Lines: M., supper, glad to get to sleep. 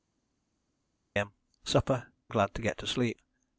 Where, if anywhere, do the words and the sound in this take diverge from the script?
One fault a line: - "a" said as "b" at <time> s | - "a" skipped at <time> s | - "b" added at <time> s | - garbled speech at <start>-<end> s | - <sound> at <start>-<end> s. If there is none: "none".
none